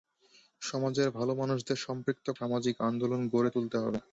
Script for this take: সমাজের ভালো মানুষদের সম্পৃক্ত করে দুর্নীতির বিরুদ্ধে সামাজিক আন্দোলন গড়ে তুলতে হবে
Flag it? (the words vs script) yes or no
yes